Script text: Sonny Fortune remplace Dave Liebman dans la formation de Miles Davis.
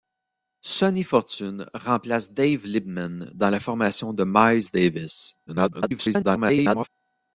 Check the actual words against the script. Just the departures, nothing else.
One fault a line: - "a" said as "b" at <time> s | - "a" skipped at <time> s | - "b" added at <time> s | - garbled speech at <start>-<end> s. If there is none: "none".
- garbled speech at 5.5-6.9 s